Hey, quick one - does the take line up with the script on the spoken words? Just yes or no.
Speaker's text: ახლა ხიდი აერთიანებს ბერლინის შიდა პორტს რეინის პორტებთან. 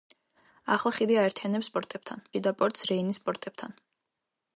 no